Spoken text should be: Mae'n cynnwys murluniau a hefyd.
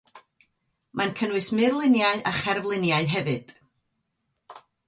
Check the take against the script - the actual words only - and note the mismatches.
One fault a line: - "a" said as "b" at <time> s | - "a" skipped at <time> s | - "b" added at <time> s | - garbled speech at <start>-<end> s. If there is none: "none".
- "cherfluniau" added at 2.4 s